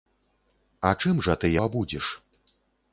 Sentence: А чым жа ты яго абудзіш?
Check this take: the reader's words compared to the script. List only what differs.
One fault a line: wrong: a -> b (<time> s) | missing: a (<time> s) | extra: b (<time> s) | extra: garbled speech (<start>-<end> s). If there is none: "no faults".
missing: яго (1.5 s)